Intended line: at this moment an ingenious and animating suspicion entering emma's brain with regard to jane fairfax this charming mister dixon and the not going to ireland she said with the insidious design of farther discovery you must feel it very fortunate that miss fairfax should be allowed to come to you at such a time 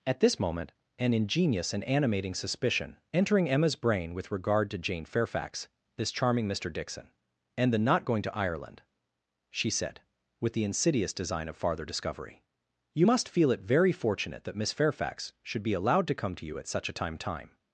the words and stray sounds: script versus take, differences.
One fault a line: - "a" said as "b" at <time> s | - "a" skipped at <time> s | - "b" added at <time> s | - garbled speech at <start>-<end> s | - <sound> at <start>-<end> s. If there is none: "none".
- "time" added at 17.2 s